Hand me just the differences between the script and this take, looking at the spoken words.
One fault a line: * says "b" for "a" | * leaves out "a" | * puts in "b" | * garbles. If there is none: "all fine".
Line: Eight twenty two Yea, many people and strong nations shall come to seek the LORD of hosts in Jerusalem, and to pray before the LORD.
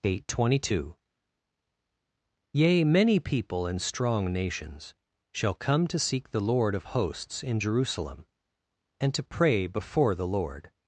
all fine